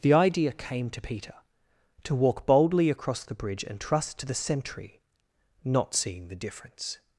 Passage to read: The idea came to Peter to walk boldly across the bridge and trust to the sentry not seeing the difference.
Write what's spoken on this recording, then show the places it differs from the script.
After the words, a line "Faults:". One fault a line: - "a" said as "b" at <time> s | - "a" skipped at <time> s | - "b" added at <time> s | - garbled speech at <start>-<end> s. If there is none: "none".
The idea came to Peter to walk boldly across the bridge and trust to the sentry not seeing the difference.
Faults:
none